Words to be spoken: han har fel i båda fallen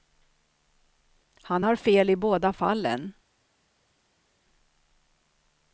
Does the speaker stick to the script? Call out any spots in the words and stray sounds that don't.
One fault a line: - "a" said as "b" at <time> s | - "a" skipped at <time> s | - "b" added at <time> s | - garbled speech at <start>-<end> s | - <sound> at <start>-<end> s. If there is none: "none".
none